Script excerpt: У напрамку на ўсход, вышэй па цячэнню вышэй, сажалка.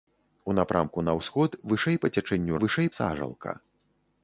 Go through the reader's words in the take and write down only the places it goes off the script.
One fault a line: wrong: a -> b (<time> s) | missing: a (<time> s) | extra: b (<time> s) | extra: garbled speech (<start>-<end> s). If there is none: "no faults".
no faults